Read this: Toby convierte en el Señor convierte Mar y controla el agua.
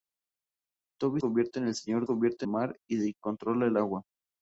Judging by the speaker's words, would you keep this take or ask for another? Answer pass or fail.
pass